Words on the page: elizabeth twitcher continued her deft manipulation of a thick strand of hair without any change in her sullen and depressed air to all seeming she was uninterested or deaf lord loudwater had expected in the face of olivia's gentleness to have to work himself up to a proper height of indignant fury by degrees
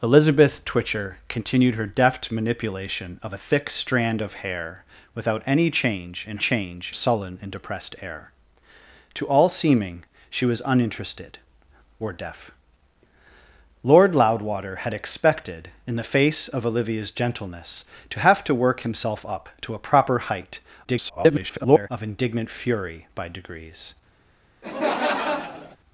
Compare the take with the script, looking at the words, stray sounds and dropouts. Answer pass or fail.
fail